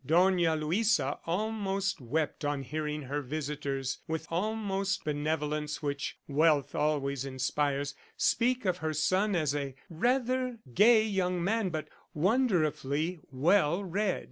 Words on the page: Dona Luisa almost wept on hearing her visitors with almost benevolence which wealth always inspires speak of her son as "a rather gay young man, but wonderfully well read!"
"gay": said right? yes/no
yes